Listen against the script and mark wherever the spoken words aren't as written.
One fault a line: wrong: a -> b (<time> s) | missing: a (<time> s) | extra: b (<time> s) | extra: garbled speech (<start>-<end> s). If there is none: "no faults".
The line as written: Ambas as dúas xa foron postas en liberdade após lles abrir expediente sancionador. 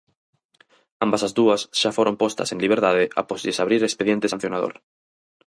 no faults